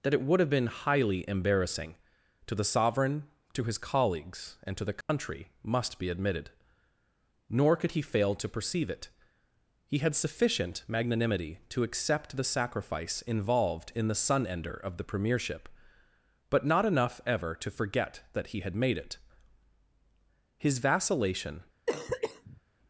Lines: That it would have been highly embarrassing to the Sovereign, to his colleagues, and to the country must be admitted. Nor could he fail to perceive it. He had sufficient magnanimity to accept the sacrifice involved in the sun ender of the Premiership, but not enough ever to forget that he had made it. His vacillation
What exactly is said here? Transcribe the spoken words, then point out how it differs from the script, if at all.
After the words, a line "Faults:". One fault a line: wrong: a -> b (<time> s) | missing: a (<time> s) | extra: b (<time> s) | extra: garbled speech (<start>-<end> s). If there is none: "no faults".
That it would have been highly embarrassing to the Sovereign, to his colleagues, and to the country must be admitted. Nor could he fail to perceive it. He had sufficient magnanimity to accept the sacrifice involved in the sun ender of the Premiership, but not enough ever to forget that he had made it. His vacillation
Faults:
no faults